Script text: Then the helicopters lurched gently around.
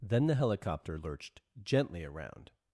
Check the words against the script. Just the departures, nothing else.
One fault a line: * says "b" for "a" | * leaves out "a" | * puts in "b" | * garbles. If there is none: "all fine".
* says "helicopter" for "helicopters"